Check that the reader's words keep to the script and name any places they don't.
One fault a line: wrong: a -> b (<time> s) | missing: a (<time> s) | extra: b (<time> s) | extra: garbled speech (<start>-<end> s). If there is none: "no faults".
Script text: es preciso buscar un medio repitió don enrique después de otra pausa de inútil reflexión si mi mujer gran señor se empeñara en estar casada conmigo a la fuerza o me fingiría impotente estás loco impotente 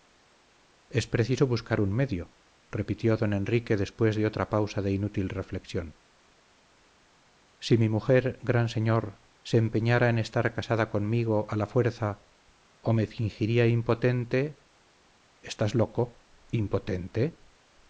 no faults